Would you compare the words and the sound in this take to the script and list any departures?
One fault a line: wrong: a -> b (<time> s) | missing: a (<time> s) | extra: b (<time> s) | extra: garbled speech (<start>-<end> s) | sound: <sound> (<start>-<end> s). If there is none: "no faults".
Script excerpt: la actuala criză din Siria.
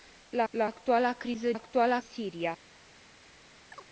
extra: la (0.5 s)
wrong: din -> actuala (1.5 s)
sound: chirp (3.7-3.9 s)